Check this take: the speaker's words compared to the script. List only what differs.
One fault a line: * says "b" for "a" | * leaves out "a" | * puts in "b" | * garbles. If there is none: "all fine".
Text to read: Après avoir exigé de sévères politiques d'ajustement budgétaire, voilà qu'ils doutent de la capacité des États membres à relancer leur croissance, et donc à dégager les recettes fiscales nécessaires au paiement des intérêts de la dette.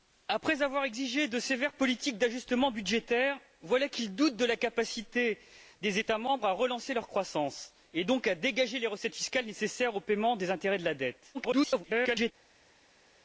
* garbles